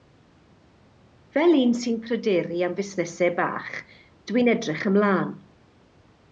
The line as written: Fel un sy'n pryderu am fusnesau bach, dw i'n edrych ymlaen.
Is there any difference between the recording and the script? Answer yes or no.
no